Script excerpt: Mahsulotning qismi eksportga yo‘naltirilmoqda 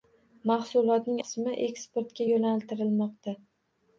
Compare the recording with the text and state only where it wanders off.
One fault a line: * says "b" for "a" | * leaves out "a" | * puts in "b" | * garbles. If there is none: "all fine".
all fine